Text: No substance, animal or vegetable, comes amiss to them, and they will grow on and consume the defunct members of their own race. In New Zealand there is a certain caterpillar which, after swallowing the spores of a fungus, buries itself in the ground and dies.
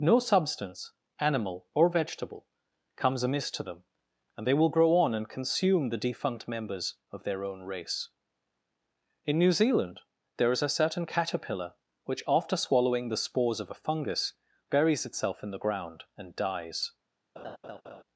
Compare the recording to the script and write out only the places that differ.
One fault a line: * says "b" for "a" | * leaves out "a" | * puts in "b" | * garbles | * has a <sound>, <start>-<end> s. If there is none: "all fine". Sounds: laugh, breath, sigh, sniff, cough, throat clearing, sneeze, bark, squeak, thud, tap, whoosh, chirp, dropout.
* has a laugh, 17.4-18.0 s